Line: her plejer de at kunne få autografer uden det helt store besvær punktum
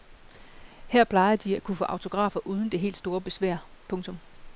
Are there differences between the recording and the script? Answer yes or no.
no